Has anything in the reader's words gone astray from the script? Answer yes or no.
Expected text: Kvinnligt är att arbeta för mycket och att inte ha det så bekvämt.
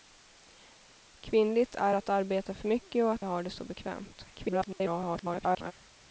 yes